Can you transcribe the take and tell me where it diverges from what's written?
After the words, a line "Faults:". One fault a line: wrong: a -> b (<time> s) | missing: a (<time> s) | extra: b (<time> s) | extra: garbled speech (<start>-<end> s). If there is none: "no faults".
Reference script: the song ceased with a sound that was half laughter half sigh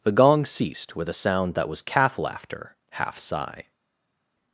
the gong ceased with a sound that was calf laughter half sigh
Faults:
wrong: song -> gong (0.1 s)
wrong: half -> calf (1.8 s)